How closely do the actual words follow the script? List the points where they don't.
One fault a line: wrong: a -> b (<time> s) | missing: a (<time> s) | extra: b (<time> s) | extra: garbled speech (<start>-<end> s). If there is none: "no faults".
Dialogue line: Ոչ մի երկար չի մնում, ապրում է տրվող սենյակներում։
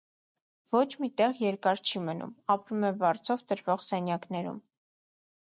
extra: տեղ (1.2 s)
extra: վարձով (3.0 s)